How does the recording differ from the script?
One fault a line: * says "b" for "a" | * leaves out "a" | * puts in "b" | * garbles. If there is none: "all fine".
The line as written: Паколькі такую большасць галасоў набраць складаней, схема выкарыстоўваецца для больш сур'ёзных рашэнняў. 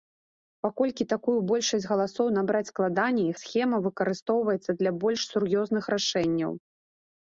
all fine